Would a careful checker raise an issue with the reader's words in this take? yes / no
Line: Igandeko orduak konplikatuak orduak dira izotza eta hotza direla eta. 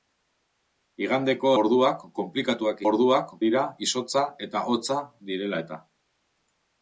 no